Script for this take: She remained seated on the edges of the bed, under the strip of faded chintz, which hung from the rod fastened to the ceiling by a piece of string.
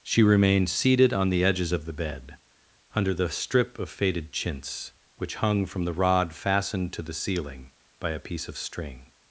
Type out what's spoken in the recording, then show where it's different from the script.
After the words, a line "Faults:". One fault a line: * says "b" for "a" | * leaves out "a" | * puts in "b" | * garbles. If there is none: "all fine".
She remained seated on the edges of the bed, under the strip of faded chintz, which hung from the rod fastened to the ceiling by a piece of string.
Faults:
all fine